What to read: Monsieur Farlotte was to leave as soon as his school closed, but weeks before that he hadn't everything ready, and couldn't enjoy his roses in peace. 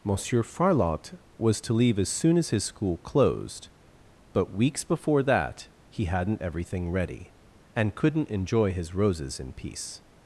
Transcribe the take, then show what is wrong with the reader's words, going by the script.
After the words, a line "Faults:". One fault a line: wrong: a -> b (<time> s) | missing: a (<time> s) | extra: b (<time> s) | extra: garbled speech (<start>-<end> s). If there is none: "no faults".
Monsieur Farlotte was to leave as soon as his school closed, but weeks before that he hadn't everything ready, and couldn't enjoy his roses in peace.
Faults:
no faults